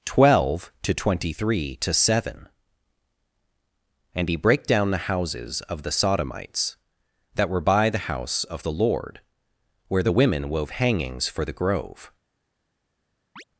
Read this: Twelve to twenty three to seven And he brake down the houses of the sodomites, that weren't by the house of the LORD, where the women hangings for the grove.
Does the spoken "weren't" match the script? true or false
false